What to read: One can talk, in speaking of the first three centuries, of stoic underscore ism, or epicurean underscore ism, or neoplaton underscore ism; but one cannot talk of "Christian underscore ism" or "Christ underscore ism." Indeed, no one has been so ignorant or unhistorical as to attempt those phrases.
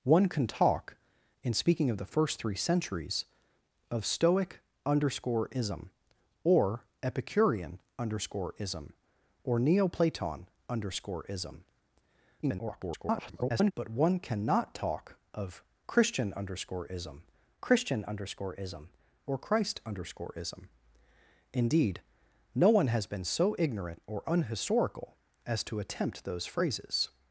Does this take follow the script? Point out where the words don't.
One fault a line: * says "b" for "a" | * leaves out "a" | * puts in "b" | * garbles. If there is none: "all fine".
* garbles
* puts in "christian underscore ism"